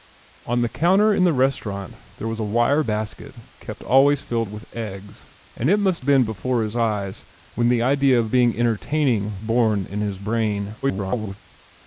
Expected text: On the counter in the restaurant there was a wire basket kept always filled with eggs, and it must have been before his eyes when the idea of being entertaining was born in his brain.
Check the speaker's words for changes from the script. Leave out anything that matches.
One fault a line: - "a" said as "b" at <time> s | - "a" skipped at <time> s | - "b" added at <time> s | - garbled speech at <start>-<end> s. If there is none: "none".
- "have" skipped at 6.0 s
- "was" skipped at 9.4 s
- garbled speech at 10.8-11.4 s